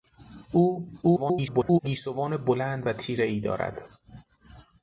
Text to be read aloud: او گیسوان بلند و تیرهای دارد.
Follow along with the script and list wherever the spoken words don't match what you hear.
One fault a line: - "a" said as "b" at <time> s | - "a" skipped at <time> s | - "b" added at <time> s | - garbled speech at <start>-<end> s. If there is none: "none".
- garbled speech at 1.0-1.8 s